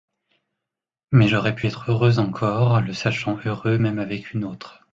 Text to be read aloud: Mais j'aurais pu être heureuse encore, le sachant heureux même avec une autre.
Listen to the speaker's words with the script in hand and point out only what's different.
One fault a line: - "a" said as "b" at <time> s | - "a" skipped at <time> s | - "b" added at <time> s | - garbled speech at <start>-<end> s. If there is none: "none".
none